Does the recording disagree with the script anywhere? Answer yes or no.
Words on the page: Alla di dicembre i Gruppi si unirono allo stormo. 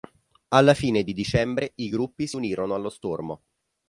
yes